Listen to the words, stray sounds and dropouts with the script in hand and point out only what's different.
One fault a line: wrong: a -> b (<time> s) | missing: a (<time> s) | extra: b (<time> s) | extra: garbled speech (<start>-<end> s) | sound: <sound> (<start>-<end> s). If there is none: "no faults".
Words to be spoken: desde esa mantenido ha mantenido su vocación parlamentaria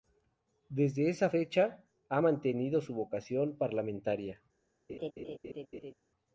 wrong: mantenido -> fecha (1.3 s)
sound: laugh (4.9-5.9 s)